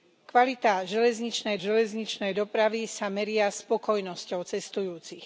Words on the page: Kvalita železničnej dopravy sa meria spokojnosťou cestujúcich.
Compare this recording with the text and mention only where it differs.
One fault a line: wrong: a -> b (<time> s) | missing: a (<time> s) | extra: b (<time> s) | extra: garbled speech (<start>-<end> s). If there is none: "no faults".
extra: železničnej (1.6 s)